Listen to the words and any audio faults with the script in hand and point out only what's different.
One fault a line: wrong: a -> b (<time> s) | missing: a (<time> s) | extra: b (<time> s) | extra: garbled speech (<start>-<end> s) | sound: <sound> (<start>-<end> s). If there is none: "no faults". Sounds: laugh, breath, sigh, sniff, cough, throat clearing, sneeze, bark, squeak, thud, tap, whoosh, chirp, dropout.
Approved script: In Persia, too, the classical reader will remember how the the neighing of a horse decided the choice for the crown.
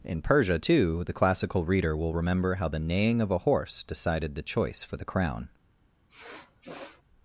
missing: the (2.8 s)
sound: sniff (6.1-7.0 s)